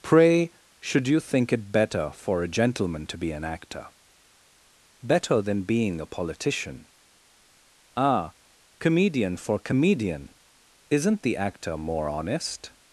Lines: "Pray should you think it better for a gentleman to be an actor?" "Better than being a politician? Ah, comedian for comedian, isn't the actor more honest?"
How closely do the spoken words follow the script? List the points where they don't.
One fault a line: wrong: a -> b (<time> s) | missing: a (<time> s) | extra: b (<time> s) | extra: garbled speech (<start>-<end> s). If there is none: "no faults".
no faults